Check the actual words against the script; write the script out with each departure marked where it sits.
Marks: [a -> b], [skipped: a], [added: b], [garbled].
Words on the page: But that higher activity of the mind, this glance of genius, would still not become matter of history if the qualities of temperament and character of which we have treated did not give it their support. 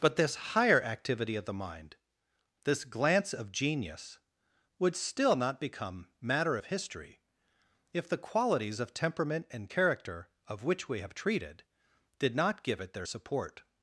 But [that -> this] higher activity of the mind, this glance of genius, would still not become matter of history if the qualities of temperament and character of which we have treated did not give it their support.